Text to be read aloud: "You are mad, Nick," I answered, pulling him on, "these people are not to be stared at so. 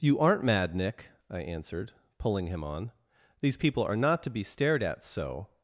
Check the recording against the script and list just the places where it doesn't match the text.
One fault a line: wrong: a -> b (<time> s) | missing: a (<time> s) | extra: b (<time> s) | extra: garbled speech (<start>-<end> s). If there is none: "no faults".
wrong: are -> aren't (0.2 s)